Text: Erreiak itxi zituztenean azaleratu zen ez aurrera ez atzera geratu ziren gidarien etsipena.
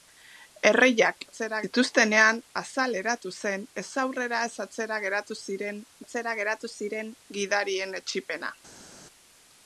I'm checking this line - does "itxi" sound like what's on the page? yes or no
no